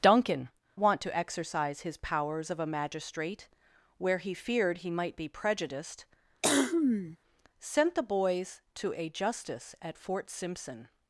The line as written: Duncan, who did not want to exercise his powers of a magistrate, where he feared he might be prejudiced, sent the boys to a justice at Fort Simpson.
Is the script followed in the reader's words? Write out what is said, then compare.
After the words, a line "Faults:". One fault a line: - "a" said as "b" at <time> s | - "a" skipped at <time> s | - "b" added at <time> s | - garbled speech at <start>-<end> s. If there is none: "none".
Duncan, want to exercise his powers of a magistrate, where he feared he might be prejudiced, sent the boys to a justice at Fort Simpson.
Faults:
- "who did not" skipped at 0.5 s